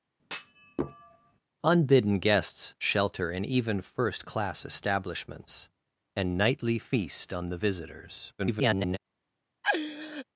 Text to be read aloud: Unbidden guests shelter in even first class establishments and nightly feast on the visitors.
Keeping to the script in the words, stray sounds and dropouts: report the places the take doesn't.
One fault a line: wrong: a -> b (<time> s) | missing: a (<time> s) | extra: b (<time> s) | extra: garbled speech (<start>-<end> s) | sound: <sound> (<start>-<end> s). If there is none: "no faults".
sound: thud (0.2-1.4 s)
extra: garbled speech (8.4-9.0 s)
sound: laugh (9.6-10.2 s)